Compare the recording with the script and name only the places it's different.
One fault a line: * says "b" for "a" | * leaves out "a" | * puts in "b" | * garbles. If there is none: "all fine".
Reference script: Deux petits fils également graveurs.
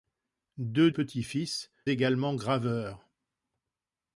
all fine